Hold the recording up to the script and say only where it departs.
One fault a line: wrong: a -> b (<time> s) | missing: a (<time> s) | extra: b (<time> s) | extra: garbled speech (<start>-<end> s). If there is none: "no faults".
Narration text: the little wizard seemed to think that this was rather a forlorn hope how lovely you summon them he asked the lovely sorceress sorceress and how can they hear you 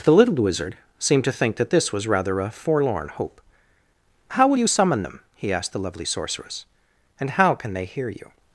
wrong: lovely -> will (4.5 s)
missing: sorceress (6.7 s)